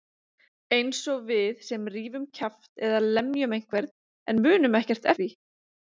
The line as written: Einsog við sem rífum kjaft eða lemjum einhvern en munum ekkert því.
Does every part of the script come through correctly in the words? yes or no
yes